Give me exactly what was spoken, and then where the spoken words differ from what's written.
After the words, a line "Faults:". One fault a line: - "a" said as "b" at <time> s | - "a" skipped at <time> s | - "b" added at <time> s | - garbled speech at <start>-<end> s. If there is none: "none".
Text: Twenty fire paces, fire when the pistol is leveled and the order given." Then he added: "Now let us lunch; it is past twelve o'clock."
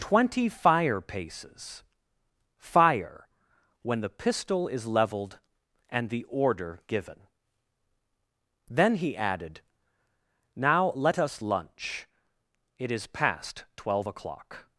Twenty fire paces, fire when the pistol is leveled and the order given." Then he added: "Now let us lunch; it is past twelve o'clock."
Faults:
none